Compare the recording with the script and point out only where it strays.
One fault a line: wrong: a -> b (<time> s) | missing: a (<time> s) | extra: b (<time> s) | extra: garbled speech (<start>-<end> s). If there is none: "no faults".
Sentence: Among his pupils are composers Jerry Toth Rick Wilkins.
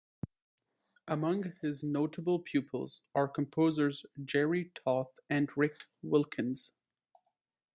extra: notable (1.8 s)
extra: and (5.3 s)